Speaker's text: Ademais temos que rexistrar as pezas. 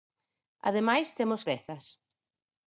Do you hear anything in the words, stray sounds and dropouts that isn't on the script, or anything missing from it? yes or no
yes